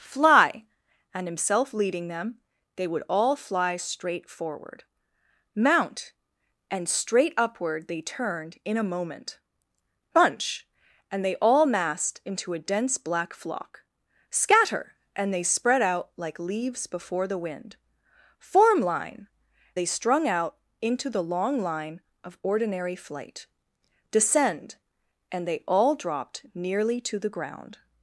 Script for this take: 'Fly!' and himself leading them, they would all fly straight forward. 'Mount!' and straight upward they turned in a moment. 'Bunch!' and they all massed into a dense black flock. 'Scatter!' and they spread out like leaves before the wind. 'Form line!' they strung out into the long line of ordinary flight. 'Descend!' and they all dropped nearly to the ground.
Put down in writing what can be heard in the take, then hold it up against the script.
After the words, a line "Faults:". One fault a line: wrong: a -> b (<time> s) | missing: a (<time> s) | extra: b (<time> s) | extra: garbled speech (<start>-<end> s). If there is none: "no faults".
'Fly!' and himself leading them, they would all fly straight forward. 'Mount!' and straight upward they turned in a moment. 'Bunch!' and they all massed into a dense black flock. 'Scatter!' and they spread out like leaves before the wind. 'Form line!' they strung out into the long line of ordinary flight. 'Descend!' and they all dropped nearly to the ground.
Faults:
no faults